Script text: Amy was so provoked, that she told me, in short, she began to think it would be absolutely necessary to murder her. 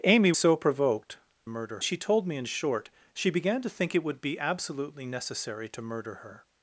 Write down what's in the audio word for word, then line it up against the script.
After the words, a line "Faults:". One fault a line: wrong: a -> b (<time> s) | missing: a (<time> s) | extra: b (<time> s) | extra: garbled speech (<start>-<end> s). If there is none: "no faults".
Amy so provoked, murder she told me, in short, she began to think it would be absolutely necessary to murder her.
Faults:
missing: was (0.3 s)
wrong: that -> murder (1.5 s)